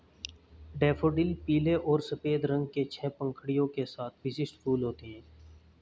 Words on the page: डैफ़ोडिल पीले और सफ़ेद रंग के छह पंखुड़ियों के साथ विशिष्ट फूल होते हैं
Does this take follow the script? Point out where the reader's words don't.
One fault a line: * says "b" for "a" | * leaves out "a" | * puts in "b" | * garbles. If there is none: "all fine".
all fine